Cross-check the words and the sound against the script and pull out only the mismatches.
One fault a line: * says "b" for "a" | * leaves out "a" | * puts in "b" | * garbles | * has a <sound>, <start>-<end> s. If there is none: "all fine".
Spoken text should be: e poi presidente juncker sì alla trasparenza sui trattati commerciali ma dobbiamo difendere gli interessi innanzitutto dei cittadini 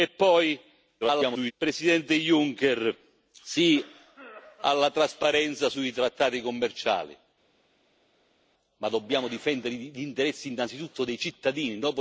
* garbles